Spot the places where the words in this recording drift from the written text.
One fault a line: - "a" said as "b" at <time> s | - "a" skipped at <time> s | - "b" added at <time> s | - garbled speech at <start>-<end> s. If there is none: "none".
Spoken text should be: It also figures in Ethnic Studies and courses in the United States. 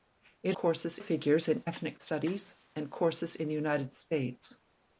- "also" said as "courses" at 0.5 s